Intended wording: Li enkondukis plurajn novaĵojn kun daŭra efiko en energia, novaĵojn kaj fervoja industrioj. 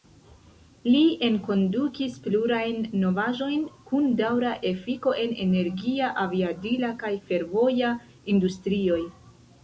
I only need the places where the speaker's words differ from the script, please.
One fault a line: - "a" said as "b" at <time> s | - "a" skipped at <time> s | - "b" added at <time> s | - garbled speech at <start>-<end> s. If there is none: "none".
- "novaĵojn" said as "aviadila" at 6.2 s